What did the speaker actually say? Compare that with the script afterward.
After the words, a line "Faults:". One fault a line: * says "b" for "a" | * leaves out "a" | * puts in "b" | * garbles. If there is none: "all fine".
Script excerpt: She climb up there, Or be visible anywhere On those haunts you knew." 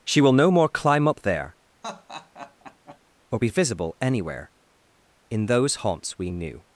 She will no more climb up there, Or be visible anywhere In those haunts we knew."
Faults:
* puts in "will no more"
* says "In" for "On"
* says "we" for "you"